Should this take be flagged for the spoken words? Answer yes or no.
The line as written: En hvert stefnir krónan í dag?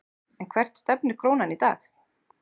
no